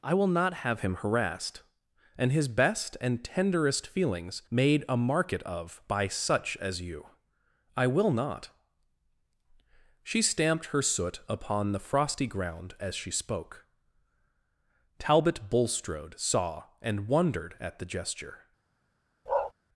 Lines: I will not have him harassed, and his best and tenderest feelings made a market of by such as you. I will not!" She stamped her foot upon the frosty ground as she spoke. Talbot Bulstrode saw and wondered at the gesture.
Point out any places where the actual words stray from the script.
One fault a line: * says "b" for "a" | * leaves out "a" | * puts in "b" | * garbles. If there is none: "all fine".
* says "soot" for "foot"